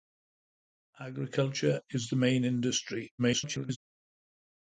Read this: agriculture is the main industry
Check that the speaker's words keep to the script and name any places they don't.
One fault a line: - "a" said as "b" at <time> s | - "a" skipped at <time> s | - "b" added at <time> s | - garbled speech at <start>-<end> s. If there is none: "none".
- garbled speech at 3.2-3.8 s